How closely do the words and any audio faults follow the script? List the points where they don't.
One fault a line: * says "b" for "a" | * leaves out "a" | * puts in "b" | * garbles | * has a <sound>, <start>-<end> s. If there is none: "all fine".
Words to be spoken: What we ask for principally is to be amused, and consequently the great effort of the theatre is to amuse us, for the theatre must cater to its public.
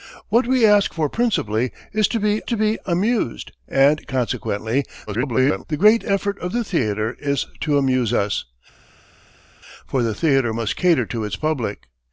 * puts in "to be"
* garbles